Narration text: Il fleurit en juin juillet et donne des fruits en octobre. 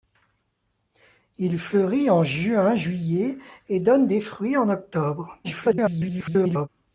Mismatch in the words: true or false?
true